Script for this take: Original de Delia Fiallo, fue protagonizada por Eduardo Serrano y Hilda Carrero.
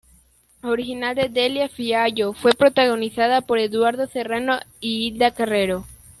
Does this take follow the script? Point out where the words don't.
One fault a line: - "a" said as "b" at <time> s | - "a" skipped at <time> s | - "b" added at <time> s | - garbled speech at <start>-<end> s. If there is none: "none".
none